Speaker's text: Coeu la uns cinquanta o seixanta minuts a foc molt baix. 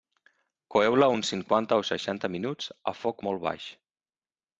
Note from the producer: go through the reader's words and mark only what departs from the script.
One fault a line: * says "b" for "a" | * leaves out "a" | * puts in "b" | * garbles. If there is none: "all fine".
all fine